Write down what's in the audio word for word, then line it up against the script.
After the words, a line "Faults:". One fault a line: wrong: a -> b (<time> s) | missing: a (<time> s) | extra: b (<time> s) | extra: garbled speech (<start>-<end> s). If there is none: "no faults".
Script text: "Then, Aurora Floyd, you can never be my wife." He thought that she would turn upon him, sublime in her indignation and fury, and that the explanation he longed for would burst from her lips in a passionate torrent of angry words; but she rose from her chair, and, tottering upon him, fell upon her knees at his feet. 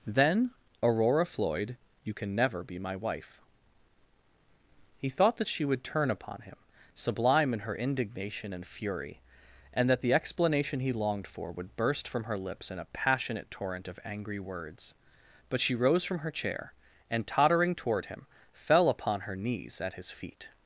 "Then, Aurora Floyd, you can never be my wife." He thought that she would turn upon him, sublime in her indignation and fury, and that the explanation he longed for would burst from her lips in a passionate torrent of angry words; but she rose from her chair, and, tottering toward him, fell upon her knees at his feet.
Faults:
wrong: upon -> toward (17.8 s)